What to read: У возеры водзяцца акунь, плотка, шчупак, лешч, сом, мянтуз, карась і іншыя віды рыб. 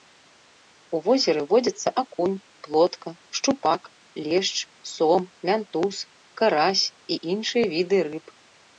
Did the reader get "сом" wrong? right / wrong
right